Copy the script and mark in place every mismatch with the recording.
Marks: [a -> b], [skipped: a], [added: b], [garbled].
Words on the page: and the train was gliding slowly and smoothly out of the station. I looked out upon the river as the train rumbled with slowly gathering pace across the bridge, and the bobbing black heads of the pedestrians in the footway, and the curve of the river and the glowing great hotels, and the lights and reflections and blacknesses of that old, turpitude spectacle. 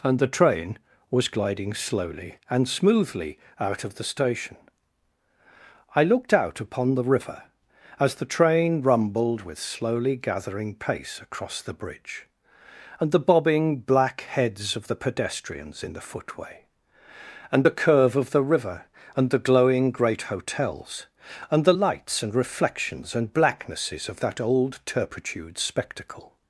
and the train was gliding slowly and smoothly out of the station. I looked out upon the river as the train rumbled with slowly gathering pace across the bridge, and the bobbing black heads of the pedestrians in the footway, and the curve of the river and the glowing great hotels, and the lights and reflections and blacknesses of that old, turpitude spectacle.